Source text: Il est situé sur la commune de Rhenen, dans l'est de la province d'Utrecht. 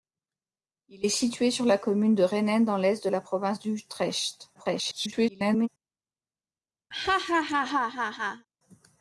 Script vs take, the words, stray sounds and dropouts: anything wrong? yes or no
yes